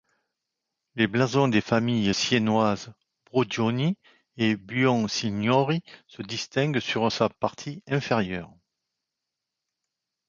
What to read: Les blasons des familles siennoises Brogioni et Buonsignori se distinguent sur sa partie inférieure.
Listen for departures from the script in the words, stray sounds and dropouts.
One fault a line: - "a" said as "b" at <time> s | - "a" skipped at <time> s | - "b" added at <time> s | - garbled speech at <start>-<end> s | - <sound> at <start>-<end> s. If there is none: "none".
none